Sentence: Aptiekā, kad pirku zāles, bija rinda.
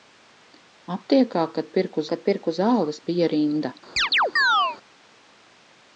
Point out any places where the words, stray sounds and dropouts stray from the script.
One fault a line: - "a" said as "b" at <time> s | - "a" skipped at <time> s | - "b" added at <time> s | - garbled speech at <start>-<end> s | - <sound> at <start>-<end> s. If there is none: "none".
- "kad pirku" added at 2.1 s
- chirp at 4.0-4.8 s